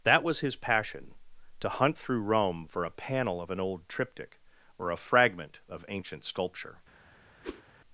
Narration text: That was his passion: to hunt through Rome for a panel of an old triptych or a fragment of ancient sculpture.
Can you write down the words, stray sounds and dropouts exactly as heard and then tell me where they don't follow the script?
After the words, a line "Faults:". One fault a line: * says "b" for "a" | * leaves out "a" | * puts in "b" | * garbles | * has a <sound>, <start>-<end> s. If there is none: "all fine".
That was his passion: to hunt through Rome for a panel of an old triptych or a fragment of ancient sculpture.
Faults:
* has a whoosh, 7.4-7.6 s